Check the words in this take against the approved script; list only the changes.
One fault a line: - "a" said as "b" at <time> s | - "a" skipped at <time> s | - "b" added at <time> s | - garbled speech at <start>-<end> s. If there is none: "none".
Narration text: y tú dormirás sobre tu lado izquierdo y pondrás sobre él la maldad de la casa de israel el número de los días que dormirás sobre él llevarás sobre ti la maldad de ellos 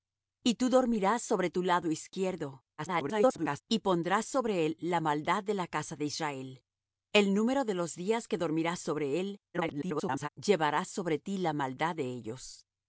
- garbled speech at 2.8-3.6 s
- garbled speech at 9.5-10.3 s